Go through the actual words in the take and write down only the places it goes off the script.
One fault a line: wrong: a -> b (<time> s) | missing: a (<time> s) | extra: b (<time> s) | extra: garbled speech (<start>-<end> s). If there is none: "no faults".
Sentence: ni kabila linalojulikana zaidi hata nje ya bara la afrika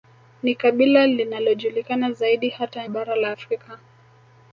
missing: nje ya (2.9 s)